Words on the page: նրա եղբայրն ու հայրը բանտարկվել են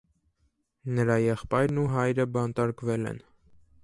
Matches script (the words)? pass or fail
pass